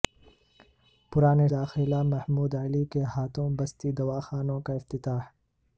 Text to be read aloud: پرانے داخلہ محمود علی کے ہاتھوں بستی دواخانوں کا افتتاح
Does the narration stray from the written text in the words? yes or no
no